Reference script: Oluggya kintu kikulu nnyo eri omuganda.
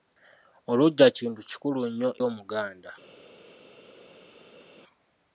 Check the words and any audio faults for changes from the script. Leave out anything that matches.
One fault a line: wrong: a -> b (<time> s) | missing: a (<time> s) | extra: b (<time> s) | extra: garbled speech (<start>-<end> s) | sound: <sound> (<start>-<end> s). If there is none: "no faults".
missing: eri (2.1 s)